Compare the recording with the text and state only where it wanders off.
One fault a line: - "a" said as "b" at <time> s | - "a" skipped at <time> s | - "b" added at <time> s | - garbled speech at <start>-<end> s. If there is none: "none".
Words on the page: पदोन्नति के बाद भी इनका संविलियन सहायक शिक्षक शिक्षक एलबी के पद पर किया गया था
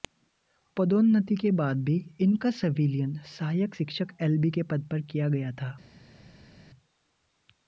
- "शिक्षक" skipped at 4.2 s